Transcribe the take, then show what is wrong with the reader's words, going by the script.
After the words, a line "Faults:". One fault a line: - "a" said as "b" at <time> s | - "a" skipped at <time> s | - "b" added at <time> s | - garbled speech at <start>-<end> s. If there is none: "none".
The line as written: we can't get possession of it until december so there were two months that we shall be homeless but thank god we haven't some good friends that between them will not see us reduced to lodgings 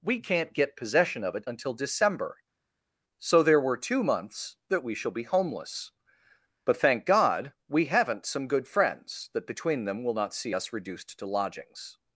we can't get possession of it until december so there were two months that we shall be homeless but thank god we haven't some good friends that between them will not see us reduced to lodgings
Faults:
none